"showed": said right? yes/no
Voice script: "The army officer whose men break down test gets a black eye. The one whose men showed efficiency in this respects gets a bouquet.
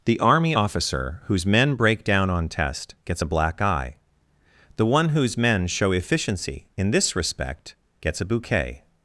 no